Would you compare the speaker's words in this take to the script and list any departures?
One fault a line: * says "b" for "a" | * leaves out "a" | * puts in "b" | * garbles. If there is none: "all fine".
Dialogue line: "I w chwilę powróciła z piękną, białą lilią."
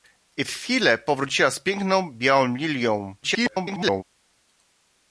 * garbles